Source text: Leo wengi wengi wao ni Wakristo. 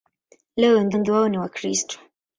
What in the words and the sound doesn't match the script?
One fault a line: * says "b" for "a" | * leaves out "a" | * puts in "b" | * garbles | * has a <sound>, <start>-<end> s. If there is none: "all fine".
all fine